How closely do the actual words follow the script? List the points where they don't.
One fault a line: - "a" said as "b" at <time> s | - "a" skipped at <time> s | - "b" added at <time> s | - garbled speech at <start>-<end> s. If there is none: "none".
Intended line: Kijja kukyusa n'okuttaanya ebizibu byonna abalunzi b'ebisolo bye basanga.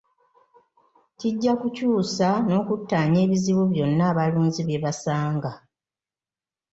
- "b'ebisolo" skipped at 4.6 s